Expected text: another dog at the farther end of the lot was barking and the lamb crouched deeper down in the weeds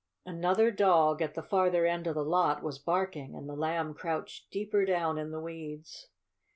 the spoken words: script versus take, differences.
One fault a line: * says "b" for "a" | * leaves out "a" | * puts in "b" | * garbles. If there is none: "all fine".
all fine